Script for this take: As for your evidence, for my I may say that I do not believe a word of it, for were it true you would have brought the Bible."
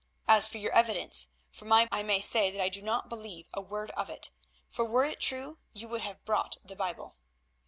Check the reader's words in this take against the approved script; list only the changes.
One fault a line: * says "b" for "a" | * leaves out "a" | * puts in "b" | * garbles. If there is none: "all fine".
all fine